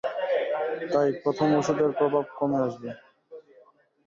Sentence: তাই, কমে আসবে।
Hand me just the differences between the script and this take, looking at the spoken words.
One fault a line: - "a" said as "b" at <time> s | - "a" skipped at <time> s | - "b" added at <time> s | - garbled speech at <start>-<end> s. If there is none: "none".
- "প্রথম ওষুধের প্রভাব" added at 1.2 s